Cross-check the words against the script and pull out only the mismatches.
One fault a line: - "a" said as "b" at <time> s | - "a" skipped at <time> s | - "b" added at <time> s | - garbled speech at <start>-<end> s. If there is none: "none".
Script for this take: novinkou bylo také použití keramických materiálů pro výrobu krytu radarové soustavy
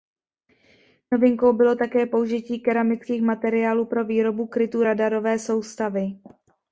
none